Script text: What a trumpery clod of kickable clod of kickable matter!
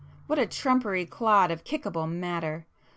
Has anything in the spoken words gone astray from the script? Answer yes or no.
yes